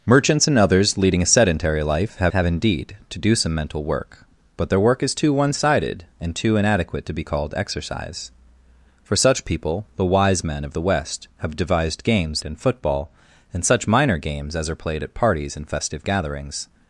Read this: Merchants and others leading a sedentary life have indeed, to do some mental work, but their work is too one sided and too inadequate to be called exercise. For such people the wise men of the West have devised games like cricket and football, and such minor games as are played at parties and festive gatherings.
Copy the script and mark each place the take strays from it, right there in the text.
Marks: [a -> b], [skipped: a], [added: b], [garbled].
Merchants and others leading a sedentary life have [added: have] indeed, to do some mental work, but their work is too one sided and too inadequate to be called exercise. For such people the wise men of the West have devised games [skipped: like cricket] and football, and such minor games as are played at parties and festive gatherings.